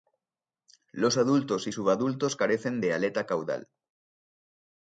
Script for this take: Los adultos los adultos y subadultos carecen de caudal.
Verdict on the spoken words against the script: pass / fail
fail